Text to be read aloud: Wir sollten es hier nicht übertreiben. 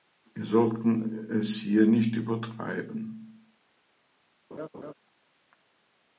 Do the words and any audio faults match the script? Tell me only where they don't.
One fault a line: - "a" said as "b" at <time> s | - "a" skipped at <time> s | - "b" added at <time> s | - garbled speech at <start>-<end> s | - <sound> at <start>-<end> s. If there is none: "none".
- laugh at 4.5-4.9 s